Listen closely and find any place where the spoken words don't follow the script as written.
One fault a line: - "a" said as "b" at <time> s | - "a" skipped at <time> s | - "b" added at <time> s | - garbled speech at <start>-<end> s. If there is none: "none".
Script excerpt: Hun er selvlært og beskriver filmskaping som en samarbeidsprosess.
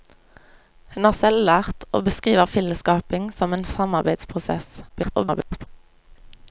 - garbled speech at 4.9-5.7 s